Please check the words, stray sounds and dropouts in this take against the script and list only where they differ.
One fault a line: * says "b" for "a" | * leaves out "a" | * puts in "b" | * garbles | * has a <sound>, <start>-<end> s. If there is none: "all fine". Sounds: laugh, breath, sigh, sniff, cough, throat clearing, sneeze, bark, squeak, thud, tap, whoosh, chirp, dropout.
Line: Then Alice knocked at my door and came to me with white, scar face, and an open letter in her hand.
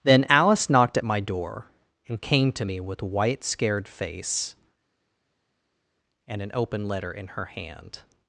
* says "scared" for "scar"